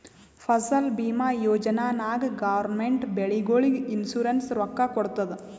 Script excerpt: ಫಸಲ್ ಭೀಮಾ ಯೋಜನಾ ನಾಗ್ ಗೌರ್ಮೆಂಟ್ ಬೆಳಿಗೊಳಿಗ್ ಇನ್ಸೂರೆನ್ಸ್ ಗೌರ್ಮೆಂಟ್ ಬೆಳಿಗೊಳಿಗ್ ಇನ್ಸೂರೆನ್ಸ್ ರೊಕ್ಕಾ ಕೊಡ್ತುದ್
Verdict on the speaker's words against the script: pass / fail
fail